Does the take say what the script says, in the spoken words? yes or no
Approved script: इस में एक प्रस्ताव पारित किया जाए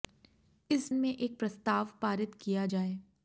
yes